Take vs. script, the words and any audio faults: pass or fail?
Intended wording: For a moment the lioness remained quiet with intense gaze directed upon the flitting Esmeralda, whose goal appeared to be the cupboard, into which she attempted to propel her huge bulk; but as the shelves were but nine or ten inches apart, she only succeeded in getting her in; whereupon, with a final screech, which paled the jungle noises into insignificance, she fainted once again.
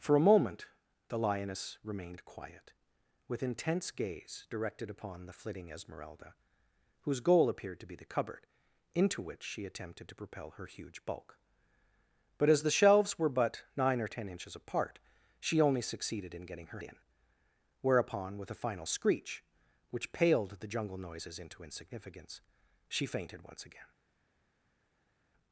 pass